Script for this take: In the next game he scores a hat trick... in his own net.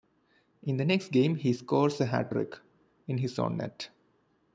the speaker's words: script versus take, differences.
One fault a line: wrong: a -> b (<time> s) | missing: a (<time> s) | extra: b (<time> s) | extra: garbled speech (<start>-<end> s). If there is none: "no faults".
no faults